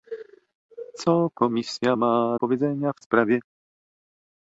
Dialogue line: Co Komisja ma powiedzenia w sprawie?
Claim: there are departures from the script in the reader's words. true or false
false